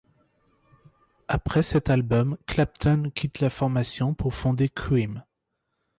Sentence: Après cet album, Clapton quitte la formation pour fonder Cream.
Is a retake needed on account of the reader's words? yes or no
no